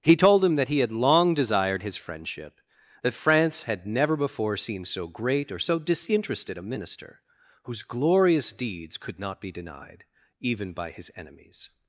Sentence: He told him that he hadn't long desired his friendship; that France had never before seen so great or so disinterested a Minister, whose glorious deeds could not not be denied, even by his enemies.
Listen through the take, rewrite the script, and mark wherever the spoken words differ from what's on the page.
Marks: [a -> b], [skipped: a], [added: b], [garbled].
He told him that he [hadn't -> had] long desired his friendship; that France had never before seen so great or so disinterested a Minister, whose glorious deeds could not [skipped: not] be denied, even by his enemies.